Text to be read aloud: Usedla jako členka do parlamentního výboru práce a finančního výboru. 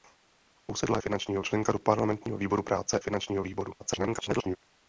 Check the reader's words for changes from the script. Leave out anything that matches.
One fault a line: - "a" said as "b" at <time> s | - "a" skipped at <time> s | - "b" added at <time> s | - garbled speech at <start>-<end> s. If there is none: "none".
- "jako" said as "finančního" at 1.0 s
- "a" skipped at 3.0 s
- garbled speech at 3.8-4.6 s